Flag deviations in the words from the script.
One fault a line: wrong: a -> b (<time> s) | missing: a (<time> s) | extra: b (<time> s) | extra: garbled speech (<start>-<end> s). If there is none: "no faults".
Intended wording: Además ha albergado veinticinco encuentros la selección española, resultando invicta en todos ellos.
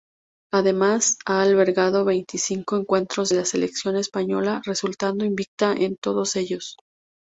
no faults